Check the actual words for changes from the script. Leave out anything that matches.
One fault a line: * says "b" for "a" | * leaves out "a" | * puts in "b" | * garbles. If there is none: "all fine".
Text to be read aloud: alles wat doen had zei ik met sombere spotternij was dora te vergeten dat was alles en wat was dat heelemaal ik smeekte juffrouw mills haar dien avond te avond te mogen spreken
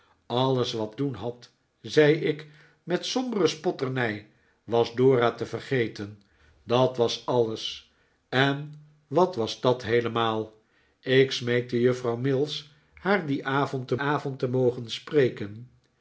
all fine